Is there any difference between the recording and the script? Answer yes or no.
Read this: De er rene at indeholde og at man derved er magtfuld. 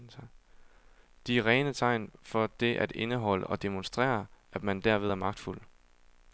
yes